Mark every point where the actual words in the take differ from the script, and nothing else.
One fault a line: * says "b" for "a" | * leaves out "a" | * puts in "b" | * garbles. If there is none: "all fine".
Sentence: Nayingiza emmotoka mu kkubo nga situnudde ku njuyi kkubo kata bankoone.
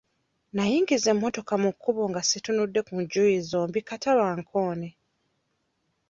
* says "zombi" for "kkubo"